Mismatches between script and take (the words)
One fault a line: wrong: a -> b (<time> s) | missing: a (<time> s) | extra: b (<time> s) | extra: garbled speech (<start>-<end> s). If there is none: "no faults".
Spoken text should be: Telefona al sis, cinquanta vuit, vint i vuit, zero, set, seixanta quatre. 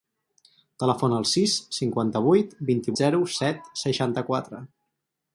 missing: vuit (3.0 s)